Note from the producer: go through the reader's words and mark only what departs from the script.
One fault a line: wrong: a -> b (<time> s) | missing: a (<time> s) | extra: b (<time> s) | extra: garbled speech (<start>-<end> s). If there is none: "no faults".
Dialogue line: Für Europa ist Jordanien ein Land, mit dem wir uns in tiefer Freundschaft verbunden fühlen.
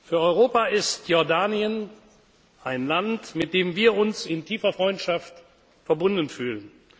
no faults